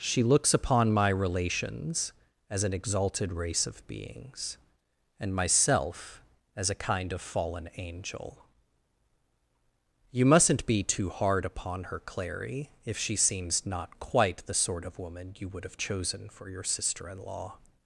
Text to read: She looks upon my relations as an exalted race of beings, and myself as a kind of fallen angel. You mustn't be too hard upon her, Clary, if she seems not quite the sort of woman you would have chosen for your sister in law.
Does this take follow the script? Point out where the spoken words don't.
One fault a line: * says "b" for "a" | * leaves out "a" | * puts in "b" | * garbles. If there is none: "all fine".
all fine